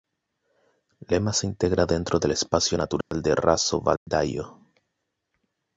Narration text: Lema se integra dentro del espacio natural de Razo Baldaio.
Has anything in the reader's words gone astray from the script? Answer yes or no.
no